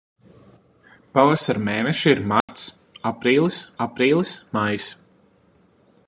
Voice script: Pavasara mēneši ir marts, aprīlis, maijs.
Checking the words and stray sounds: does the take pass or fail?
fail